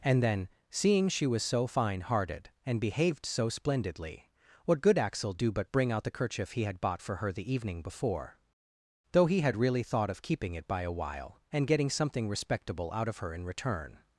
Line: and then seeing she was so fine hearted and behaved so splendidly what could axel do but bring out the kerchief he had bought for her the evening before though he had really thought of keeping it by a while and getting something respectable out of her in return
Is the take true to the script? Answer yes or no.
no